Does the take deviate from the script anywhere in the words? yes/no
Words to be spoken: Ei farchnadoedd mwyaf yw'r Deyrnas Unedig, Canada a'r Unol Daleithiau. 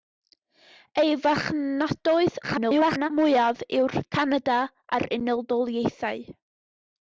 yes